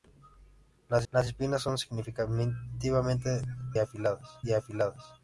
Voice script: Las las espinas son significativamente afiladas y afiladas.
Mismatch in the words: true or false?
false